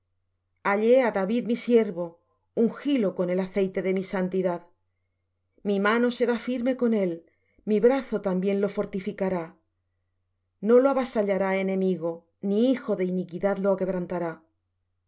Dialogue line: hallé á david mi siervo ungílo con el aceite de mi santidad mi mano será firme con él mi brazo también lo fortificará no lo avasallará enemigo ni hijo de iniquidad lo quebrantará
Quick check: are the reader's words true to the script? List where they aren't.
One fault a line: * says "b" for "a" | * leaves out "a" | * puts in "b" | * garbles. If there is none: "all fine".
all fine